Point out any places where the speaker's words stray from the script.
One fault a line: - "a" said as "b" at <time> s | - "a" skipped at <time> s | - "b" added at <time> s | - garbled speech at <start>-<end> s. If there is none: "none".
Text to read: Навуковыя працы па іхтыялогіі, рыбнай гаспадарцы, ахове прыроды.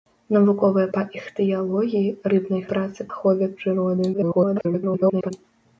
- "працы" skipped at 0.9 s
- "гаспадарцы" said as "працы" at 2.7 s
- garbled speech at 4.1-5.3 s